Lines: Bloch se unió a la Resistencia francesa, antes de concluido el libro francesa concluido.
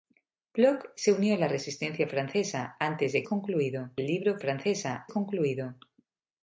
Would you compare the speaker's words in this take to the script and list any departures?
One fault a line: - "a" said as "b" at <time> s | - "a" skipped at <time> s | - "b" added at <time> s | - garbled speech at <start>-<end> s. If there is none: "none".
none